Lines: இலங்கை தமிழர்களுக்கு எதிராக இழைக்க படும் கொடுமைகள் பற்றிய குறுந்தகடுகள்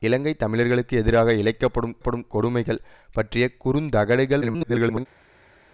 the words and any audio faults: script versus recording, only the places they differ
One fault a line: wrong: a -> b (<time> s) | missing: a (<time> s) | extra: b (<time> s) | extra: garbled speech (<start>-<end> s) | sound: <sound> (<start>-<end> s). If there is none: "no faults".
extra: படும் (2.0 s)
extra: garbled speech (4.4-5.1 s)